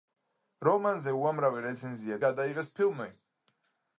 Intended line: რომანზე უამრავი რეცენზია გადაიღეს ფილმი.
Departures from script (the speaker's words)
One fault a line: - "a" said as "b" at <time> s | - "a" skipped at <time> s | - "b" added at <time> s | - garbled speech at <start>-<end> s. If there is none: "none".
none